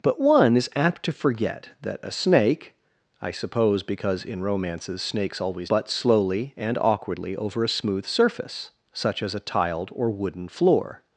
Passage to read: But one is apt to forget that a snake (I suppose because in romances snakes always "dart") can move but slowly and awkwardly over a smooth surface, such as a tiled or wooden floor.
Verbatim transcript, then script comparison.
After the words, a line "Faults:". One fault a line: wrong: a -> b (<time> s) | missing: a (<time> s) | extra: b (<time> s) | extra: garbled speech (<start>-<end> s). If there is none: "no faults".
But one is apt to forget that a snake (I suppose because in romances snakes always "but slowly and awkwardly over a smooth surface, such as a tiled or wooden floor.
Faults:
missing: dart can move (5.7 s)